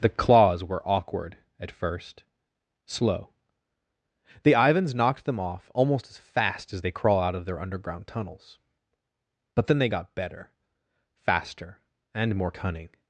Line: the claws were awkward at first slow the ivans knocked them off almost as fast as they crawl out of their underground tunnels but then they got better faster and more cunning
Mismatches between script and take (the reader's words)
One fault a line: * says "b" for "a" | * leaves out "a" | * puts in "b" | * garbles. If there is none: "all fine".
all fine